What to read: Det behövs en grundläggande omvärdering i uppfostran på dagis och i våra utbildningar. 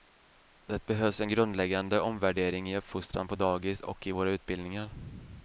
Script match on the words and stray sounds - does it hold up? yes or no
yes